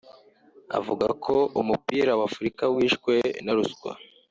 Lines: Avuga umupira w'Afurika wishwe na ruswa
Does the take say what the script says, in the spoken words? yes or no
no